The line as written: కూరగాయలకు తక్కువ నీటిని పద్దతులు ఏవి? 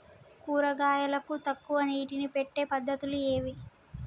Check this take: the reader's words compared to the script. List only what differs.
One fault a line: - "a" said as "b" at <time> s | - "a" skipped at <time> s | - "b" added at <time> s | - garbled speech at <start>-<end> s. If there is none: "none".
- "పెట్టే" added at 2.4 s